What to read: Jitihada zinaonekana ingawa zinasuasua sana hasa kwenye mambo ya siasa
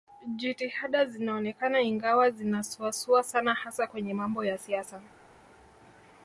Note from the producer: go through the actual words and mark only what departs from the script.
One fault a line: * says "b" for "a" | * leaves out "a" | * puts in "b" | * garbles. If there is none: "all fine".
all fine